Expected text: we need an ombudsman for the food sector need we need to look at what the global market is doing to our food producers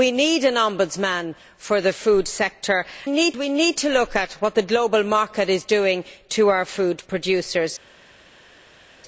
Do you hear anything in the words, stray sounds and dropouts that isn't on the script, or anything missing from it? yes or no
no